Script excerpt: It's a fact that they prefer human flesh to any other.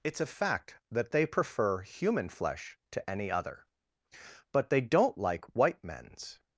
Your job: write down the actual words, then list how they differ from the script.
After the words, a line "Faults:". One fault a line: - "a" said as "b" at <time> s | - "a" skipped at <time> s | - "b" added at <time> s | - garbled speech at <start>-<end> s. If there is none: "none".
It's a fact that they prefer human flesh to any other. But they don't like white men's
Faults:
- "But they don't like white men's" added at 4.5 s